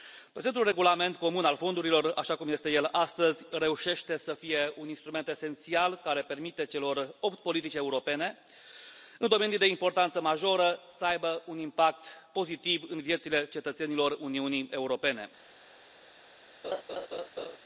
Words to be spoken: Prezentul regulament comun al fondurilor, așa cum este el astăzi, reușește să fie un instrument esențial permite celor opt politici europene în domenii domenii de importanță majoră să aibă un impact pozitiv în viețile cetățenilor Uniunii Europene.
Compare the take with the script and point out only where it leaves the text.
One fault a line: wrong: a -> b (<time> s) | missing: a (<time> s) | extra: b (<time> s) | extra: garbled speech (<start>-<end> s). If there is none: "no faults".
extra: care (6.0 s)
missing: domenii (9.6 s)